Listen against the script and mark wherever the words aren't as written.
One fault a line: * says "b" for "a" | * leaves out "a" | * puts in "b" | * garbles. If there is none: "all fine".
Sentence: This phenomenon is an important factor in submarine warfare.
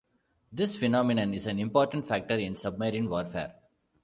all fine